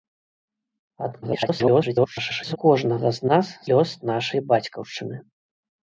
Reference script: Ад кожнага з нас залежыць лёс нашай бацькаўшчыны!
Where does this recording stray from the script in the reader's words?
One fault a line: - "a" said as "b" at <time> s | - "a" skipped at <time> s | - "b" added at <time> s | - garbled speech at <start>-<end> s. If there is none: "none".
- garbled speech at 1.2-2.6 s
- "залежыць" skipped at 3.5 s